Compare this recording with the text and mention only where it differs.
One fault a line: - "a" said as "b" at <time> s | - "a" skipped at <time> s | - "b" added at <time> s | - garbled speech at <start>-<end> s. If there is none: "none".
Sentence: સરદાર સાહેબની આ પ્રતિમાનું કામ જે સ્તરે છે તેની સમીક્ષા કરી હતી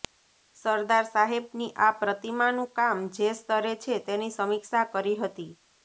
none